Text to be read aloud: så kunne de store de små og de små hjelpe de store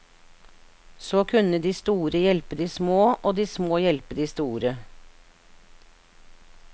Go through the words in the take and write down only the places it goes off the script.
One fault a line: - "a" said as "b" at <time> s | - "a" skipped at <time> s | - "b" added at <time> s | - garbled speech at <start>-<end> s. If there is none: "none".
- "hjelpe" added at 2.2 s